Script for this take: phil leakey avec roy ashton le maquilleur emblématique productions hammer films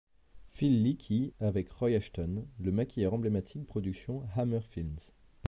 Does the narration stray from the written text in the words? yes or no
no